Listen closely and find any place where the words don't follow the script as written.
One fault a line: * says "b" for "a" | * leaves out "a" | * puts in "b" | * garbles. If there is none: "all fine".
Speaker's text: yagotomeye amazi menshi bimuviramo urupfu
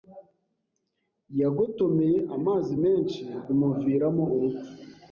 all fine